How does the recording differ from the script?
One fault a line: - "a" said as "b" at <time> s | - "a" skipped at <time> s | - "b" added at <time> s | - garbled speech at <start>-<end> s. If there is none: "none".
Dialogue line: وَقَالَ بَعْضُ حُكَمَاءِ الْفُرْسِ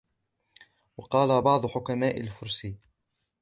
none